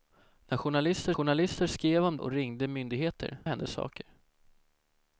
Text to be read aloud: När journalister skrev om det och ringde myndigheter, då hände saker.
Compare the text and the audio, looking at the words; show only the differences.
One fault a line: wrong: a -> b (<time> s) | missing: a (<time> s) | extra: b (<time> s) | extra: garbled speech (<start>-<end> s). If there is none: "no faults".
extra: journalister (1.1 s)
missing: det (2.2 s)
missing: då (3.4 s)